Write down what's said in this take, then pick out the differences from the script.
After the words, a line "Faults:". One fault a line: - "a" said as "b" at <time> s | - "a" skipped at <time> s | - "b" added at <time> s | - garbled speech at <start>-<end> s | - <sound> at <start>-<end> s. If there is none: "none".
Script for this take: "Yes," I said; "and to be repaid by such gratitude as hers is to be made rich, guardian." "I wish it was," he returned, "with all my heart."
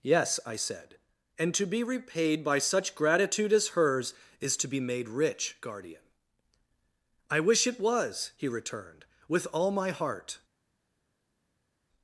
"Yes," I said; "and to be repaid by such gratitude as hers is to be made rich, guardian." "I wish it was," he returned, "with all my heart."
Faults:
none